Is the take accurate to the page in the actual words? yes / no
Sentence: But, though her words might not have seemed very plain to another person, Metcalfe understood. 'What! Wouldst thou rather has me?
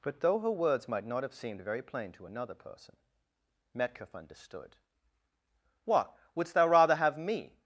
no